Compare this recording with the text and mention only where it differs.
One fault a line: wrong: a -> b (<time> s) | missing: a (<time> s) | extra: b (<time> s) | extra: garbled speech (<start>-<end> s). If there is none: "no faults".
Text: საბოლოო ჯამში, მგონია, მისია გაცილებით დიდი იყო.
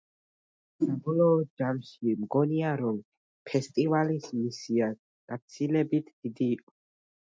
extra: რომ ფესტივალის (2.8 s)